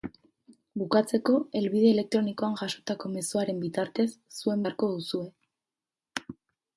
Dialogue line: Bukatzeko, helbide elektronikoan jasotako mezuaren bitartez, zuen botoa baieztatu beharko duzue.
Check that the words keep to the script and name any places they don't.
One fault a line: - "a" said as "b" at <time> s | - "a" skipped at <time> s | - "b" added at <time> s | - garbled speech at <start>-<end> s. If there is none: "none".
- "botoa baieztatu" skipped at 4.7 s